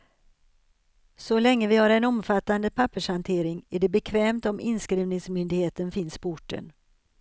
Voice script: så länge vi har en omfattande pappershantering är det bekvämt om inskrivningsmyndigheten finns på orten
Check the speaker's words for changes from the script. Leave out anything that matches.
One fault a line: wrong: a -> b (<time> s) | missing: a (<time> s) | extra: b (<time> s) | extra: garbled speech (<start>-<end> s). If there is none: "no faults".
no faults